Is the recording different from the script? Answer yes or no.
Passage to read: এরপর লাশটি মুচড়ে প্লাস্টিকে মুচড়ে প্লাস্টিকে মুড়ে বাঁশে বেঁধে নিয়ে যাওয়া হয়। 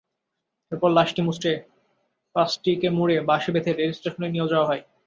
yes